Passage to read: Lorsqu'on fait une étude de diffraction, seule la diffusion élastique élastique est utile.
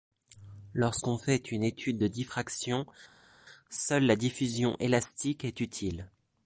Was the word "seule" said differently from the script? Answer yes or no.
no